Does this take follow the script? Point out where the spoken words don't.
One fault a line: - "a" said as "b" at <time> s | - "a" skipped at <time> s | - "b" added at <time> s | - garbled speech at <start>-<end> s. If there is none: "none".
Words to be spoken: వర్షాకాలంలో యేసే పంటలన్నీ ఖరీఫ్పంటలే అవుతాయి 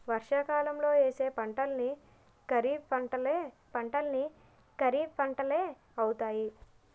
- "పంటలన్నీ ఖరీఫ్పంటలే" added at 3.7 s